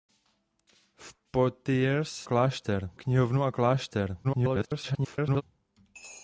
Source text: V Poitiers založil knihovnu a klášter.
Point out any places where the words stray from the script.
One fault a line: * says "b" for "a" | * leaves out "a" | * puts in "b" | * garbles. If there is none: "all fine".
* says "klášter" for "založil"
* garbles